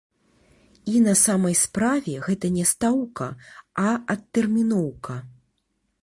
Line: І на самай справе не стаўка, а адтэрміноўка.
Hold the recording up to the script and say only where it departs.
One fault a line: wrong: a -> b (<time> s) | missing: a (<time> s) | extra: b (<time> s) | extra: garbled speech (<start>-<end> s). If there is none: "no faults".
extra: гэта (2.3 s)